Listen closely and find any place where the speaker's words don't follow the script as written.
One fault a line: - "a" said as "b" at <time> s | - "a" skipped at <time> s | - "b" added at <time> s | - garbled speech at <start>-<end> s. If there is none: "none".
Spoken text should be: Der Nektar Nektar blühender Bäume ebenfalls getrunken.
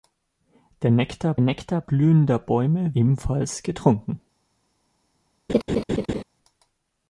none